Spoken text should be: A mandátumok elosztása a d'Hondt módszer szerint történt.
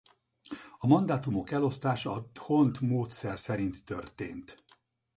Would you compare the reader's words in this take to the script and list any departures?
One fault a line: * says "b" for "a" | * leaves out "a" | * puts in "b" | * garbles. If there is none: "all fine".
all fine